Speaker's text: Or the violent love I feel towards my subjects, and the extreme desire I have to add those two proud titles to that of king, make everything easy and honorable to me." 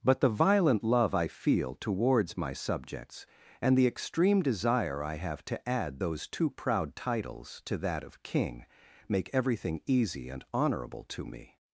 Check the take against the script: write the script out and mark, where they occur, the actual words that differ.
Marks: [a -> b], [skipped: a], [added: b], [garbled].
[Or -> But] the violent love I feel towards my subjects, and the extreme desire I have to add those two proud titles to that of king, make everything easy and honorable to me."